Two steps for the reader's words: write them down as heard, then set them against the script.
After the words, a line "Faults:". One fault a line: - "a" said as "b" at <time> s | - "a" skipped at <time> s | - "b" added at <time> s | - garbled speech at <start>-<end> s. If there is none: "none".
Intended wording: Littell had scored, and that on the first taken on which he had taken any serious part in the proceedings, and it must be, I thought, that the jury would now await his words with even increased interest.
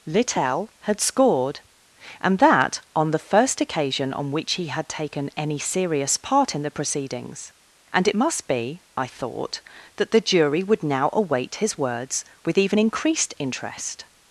Littell had scored, and that on the first occasion on which he had taken any serious part in the proceedings, and it must be, I thought, that the jury would now await his words with even increased interest.
Faults:
- "taken" said as "occasion" at 3.6 s